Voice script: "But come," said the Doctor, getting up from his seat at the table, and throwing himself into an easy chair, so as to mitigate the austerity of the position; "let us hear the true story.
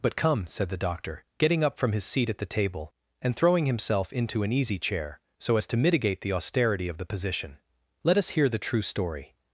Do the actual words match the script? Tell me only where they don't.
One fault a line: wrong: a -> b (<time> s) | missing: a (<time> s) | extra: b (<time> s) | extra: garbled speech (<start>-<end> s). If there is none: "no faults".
no faults